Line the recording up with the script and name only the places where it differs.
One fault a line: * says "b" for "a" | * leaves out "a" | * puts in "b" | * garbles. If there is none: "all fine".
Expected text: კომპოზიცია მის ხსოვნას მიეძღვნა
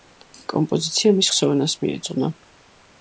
all fine